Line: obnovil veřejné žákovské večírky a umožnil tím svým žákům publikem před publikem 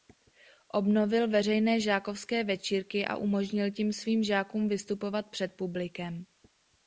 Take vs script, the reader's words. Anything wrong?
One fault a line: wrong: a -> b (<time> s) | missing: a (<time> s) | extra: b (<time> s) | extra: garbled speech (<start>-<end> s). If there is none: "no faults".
wrong: publikem -> vystupovat (4.7 s)